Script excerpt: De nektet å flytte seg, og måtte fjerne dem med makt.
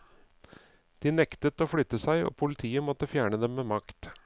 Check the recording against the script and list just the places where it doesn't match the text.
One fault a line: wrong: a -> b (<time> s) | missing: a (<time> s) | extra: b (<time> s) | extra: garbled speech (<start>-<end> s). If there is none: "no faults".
extra: politiet (2.4 s)